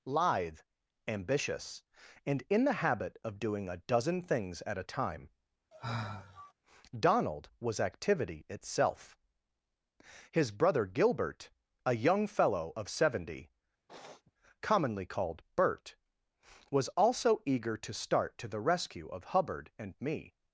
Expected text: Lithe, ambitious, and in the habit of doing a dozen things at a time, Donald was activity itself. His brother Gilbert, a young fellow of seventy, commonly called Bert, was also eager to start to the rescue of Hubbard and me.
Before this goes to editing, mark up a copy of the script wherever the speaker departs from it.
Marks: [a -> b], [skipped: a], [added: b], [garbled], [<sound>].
Lithe, ambitious, and in the habit of doing a dozen things at a time, [sigh] Donald was activity itself. His brother Gilbert, a young fellow of seventy, [sniff] commonly called Bert, was also eager to start to the rescue of Hubbard and me.